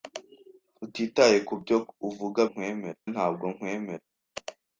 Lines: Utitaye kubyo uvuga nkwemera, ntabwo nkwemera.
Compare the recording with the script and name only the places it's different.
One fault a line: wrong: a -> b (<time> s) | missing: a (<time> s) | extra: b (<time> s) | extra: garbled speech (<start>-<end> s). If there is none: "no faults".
no faults